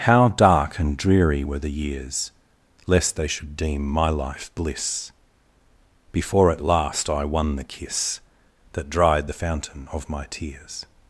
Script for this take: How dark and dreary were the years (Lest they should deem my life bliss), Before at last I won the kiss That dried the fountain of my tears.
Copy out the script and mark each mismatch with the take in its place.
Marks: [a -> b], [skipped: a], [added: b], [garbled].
How dark and dreary were the years (Lest they should deem my life bliss), Before at last I won the kiss That dried the fountain of my tears.